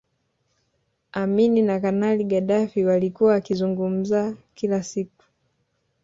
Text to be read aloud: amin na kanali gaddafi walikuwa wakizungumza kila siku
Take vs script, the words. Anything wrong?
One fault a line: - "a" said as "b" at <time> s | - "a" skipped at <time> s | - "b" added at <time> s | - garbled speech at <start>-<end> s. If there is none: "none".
none